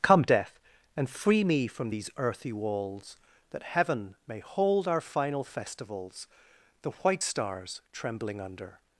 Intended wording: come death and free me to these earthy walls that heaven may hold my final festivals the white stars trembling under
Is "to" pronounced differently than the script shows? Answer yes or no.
yes